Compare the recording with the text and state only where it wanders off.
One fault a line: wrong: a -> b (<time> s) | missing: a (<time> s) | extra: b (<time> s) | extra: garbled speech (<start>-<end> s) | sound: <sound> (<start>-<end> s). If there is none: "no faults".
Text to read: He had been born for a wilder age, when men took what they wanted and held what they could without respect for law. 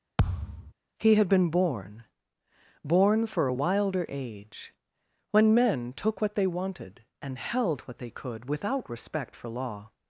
sound: thud (0.2-0.7 s)
extra: born (2.8 s)